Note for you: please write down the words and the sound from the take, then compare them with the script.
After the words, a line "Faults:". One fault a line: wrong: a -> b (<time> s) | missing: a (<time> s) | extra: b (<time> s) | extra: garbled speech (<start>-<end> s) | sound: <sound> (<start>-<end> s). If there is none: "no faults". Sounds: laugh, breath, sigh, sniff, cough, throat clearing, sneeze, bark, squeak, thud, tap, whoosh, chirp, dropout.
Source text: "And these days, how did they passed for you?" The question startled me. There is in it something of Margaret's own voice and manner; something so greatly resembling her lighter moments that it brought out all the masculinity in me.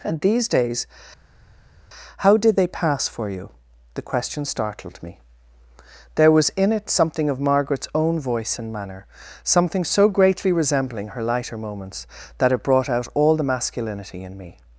"And these days, how did they pass for you?" The question startled me. There was in it something of Margaret's own voice and manner; something so greatly resembling her lighter moments that it brought out all the masculinity in me.
Faults:
wrong: passed -> pass (2.7 s)
wrong: is -> was (6.3 s)